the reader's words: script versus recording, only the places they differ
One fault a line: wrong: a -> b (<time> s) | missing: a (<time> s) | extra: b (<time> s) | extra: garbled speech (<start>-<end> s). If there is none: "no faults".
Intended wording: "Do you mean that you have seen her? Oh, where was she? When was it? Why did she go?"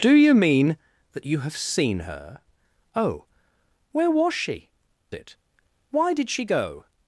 missing: When was (4.7 s)